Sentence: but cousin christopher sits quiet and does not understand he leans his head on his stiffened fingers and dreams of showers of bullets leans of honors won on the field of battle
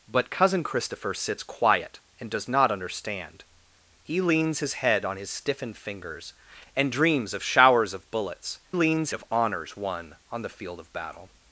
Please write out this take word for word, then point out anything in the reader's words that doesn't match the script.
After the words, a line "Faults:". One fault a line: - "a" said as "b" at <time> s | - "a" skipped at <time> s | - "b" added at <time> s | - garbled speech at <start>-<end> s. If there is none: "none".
but cousin christopher sits quiet and does not understand he leans his head on his stiffened fingers and dreams of showers of bullets leans of honors won on the field of battle
Faults:
none